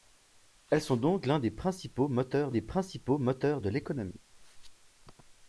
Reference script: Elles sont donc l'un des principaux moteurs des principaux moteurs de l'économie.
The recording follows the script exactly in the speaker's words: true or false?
true